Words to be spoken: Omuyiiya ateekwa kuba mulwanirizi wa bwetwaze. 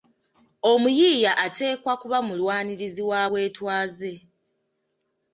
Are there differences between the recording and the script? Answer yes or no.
no